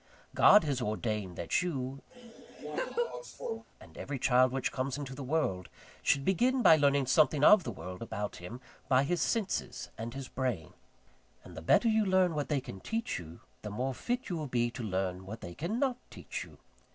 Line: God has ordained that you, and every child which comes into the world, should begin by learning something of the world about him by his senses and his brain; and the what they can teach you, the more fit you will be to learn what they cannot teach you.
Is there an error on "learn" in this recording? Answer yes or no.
no